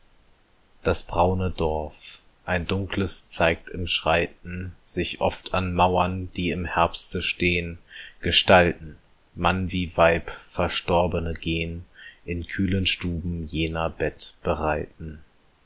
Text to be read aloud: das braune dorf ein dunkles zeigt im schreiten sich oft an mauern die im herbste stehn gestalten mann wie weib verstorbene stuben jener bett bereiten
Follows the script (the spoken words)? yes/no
no